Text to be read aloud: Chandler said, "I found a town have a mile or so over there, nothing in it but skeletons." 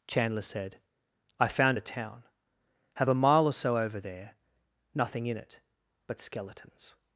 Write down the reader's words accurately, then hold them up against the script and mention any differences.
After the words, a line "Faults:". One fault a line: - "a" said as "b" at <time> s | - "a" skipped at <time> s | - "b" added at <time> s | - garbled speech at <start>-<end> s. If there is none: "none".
Chandler said, "I found a town have a mile or so over there, nothing in it but skeletons."
Faults:
none